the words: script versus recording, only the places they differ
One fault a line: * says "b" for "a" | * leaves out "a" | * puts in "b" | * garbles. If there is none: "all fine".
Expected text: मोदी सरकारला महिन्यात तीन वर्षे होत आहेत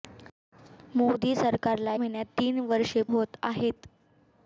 all fine